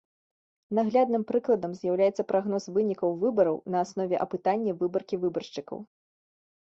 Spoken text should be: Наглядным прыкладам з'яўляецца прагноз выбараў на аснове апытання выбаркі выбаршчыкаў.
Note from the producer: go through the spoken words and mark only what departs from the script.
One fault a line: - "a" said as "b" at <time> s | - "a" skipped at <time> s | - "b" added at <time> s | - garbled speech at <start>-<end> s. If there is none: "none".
- "вынікаў" added at 2.8 s